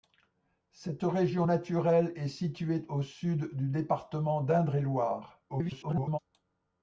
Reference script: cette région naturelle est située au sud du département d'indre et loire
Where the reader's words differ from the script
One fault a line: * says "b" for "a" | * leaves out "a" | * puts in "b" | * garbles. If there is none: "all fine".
* garbles